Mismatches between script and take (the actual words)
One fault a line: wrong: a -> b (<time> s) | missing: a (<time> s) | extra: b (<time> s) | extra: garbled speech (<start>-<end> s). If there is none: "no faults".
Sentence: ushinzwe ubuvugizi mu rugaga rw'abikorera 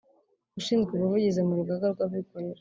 no faults